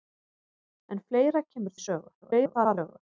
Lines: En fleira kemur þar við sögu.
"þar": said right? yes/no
no